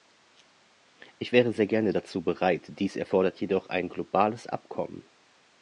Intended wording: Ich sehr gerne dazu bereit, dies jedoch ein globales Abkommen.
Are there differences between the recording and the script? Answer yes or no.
yes